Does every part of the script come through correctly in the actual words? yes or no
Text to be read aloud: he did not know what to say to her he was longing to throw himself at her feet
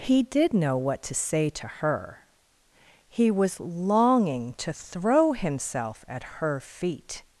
no